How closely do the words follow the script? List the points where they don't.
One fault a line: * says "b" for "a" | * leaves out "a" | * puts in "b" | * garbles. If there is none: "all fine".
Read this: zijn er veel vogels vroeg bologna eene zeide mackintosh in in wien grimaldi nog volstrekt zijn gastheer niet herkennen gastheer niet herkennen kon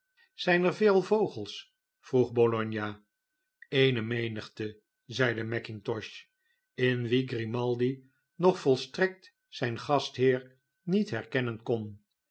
* puts in "menigte"
* leaves out "in"
* leaves out "gastheer niet herkennen"